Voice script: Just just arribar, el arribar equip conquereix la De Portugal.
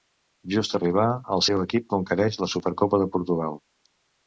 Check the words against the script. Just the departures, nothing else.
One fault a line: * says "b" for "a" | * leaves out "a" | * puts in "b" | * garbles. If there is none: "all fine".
* leaves out "just"
* says "seu" for "arribar"
* puts in "Supercopa"